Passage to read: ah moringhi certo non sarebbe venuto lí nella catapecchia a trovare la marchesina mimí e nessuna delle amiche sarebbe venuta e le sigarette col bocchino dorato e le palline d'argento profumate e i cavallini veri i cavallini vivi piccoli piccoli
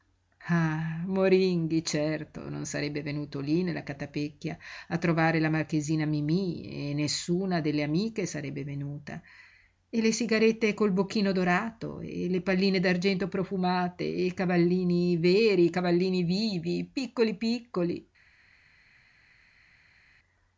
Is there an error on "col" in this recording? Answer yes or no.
no